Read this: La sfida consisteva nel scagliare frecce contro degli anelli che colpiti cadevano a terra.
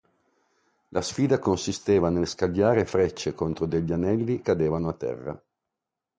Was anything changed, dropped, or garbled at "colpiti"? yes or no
yes